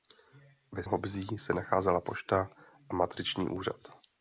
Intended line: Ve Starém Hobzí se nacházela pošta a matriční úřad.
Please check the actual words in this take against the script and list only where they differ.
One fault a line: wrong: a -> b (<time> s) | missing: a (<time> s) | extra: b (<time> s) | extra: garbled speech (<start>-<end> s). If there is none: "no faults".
missing: Starém (0.8 s)